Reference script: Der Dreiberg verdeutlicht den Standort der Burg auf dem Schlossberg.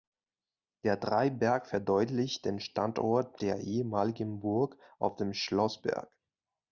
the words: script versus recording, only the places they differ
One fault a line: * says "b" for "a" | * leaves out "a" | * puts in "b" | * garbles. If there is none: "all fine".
* puts in "ehemaligen"